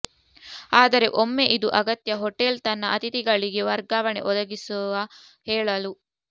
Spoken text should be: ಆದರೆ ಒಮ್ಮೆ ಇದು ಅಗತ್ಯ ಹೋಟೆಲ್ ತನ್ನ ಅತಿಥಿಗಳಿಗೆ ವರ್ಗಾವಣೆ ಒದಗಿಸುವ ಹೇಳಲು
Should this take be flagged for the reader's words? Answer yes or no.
no